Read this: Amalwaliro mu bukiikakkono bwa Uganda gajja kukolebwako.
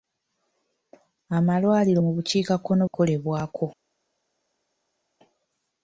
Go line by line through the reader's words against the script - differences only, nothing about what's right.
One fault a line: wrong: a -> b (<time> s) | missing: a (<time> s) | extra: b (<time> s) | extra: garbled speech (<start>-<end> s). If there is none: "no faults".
missing: bwa Uganda gajja (2.8 s)